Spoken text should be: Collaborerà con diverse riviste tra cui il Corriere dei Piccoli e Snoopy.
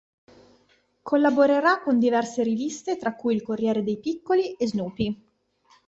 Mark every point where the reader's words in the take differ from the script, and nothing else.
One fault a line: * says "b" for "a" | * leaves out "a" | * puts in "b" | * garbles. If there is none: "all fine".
all fine